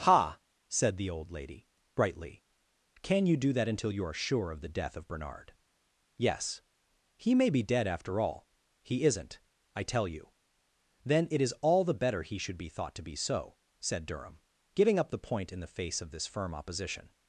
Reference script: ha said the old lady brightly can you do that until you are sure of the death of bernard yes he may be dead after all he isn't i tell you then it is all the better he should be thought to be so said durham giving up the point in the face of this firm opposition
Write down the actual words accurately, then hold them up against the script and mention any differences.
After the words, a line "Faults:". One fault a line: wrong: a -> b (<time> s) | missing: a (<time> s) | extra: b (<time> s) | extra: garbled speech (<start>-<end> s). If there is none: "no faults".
ha said the old lady brightly can you do that until you are sure of the death of bernard yes he may be dead after all he isn't i tell you then it is all the better he should be thought to be so said durham giving up the point in the face of this firm opposition
Faults:
no faults